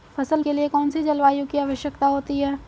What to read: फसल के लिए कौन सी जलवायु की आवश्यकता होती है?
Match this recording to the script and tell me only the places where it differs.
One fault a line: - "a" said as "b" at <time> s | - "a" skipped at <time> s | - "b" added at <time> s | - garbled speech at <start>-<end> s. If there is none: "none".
none